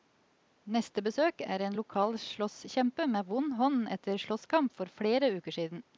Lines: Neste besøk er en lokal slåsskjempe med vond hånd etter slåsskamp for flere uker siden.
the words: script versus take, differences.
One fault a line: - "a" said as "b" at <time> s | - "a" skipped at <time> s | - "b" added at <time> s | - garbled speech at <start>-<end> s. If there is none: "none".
none